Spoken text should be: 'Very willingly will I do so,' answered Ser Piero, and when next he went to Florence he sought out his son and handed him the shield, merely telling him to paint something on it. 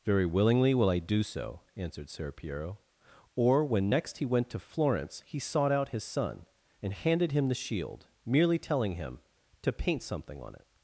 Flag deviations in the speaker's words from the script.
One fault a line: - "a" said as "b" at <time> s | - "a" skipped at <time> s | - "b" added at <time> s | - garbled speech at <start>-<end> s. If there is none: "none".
- "and" said as "or" at 3.4 s